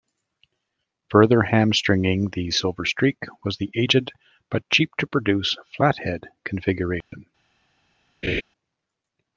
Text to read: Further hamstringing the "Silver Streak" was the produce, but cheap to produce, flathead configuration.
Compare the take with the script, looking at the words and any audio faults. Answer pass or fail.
fail